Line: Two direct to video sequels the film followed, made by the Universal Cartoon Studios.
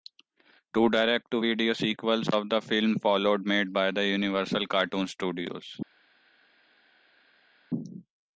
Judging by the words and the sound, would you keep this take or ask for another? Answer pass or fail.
fail